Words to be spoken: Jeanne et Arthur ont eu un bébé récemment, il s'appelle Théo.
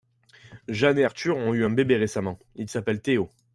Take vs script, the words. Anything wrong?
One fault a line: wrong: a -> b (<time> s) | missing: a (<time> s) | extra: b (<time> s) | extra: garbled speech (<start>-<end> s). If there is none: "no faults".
no faults